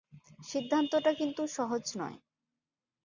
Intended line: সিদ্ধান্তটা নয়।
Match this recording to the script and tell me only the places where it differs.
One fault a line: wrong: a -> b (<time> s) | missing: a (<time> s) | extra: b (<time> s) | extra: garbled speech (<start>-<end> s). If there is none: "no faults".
extra: কিন্তু সহজ (1.1 s)